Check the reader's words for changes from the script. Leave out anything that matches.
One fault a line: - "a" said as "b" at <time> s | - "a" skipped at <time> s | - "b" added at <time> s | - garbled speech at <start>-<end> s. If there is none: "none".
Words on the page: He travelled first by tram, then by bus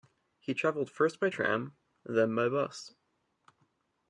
none